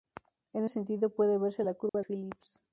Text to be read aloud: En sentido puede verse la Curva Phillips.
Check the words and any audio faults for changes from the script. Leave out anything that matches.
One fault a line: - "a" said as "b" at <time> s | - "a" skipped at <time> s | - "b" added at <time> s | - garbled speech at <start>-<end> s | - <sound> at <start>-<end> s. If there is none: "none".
- dropout at 1.9-1.9 s